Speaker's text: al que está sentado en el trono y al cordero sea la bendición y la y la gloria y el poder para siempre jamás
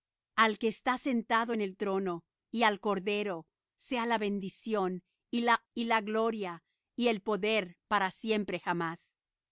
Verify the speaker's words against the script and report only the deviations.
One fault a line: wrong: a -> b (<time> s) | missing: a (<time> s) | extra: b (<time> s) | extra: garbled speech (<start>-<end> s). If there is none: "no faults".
no faults